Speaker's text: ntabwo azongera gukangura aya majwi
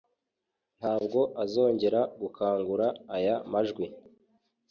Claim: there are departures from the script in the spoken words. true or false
false